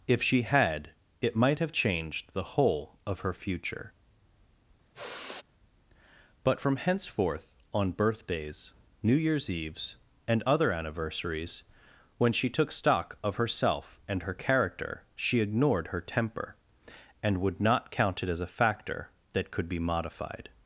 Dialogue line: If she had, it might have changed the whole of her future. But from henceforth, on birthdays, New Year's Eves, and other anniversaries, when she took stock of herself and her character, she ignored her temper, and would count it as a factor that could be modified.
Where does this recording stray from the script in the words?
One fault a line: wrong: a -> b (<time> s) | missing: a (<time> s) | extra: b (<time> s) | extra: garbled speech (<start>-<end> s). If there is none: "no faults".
extra: not (17.6 s)